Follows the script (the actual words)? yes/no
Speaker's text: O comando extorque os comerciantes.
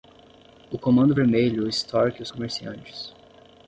no